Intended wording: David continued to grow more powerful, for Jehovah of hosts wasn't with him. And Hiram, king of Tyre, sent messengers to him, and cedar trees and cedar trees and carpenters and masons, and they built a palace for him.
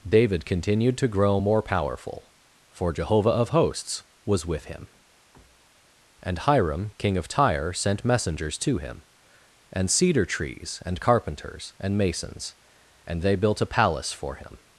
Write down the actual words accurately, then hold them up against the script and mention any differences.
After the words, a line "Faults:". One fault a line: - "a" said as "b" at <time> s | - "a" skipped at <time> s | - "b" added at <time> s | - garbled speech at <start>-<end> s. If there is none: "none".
David continued to grow more powerful, for Jehovah of hosts was with him. And Hiram, king of Tyre, sent messengers to him, and cedar trees and carpenters and masons, and they built a palace for him.
Faults:
- "wasn't" said as "was" at 4.2 s
- "cedar trees and" skipped at 11.0 s